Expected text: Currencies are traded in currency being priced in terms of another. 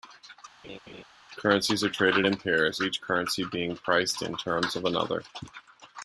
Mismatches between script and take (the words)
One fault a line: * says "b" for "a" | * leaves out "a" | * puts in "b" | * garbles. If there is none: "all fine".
* puts in "pairs each"